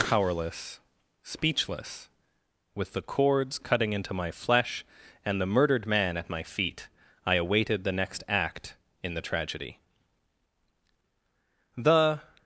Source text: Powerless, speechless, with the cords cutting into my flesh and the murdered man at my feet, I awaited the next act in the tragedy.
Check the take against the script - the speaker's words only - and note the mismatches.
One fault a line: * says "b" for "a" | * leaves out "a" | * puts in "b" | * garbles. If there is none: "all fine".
* puts in "The"